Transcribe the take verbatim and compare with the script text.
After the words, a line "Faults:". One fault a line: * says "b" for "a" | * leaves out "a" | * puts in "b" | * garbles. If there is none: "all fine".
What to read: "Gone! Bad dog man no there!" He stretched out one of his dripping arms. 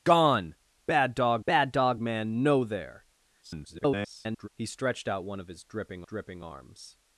"Gone! Bad dog bad dog man no there!" [garbled] He stretched out one of his dripping dripping arms.
Faults:
* puts in "bad dog"
* garbles
* puts in "dripping"